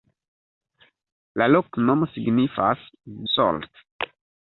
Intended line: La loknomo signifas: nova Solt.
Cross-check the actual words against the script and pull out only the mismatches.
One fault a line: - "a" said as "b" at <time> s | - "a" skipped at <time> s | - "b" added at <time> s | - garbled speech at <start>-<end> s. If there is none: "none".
- "nova" skipped at 2.9 s